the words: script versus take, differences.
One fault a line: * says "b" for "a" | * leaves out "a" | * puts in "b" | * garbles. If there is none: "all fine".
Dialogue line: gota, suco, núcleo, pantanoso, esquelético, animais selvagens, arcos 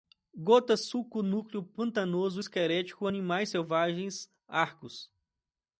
all fine